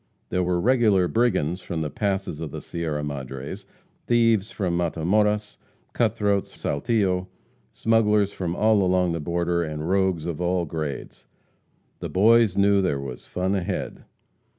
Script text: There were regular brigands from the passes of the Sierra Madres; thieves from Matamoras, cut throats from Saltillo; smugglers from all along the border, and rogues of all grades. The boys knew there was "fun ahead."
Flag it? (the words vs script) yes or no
yes